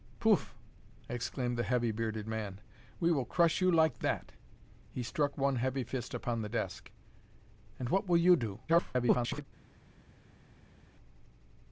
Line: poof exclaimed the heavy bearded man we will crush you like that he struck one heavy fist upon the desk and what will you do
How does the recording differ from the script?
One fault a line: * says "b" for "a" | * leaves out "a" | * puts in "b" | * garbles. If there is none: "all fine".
* garbles